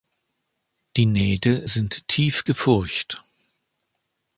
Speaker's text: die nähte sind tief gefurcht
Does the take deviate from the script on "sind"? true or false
false